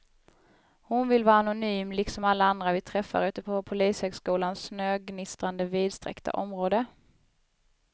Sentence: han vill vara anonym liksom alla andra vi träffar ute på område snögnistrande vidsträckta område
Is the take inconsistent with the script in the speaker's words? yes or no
yes